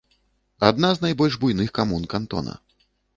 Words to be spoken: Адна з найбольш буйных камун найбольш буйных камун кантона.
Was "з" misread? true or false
false